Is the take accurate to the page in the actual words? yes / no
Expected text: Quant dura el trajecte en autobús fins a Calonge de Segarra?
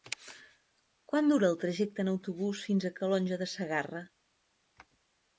yes